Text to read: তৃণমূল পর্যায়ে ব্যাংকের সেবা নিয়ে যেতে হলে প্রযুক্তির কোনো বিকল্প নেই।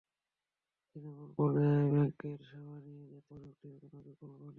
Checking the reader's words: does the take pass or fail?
fail